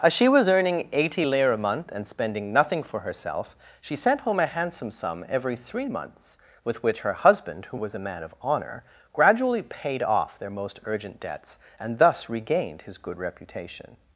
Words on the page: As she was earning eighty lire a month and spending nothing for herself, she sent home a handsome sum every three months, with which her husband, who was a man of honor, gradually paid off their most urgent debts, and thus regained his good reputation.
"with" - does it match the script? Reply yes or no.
yes